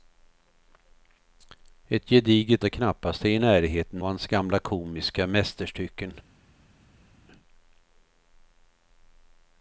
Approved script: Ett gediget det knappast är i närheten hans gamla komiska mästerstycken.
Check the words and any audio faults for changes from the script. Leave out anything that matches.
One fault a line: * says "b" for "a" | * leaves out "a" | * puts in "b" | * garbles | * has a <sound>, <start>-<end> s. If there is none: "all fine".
all fine